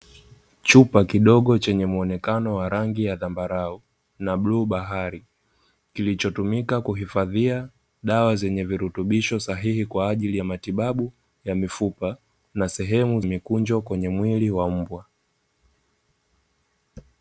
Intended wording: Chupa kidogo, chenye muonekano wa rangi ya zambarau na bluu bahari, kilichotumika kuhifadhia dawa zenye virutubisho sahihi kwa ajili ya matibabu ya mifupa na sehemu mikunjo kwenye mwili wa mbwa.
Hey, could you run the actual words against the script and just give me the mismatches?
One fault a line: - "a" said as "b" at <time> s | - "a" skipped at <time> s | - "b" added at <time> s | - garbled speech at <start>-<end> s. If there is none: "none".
none